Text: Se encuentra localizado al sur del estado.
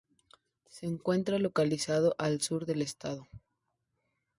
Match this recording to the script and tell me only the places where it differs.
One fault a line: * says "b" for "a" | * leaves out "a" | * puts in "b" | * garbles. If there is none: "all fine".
all fine